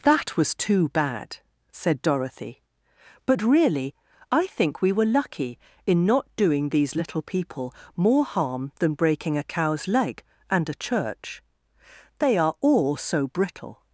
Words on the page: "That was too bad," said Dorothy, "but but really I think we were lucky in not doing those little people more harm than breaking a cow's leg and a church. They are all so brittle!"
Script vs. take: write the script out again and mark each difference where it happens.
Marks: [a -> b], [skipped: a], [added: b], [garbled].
"That was too bad," said Dorothy, "but [skipped: but] really I think we were lucky in not doing [those -> these] little people more harm than breaking a cow's leg and a church. They are all so brittle!"